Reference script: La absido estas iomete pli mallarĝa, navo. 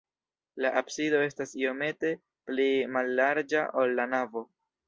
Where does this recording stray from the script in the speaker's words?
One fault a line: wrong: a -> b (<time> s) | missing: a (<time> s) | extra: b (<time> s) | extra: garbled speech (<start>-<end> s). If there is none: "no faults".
extra: ol la (3.8 s)